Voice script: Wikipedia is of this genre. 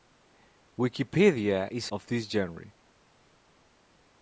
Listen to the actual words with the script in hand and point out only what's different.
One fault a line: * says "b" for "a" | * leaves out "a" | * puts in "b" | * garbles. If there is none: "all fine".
all fine